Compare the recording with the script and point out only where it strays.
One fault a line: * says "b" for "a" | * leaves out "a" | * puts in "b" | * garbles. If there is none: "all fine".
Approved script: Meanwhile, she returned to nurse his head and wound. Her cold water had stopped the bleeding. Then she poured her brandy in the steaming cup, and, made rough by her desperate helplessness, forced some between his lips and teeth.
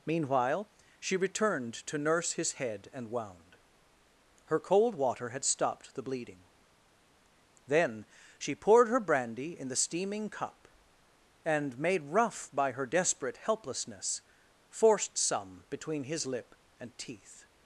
* says "lip" for "lips"